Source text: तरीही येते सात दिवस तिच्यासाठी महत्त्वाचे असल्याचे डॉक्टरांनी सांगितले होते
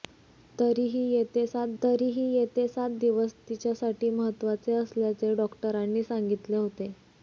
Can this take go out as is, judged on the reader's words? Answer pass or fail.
fail